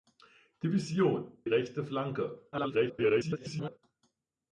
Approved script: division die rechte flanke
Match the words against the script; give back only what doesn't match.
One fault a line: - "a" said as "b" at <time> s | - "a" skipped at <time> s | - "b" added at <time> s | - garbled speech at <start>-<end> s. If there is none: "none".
- "die" skipped at 1.4 s
- garbled speech at 2.5-3.8 s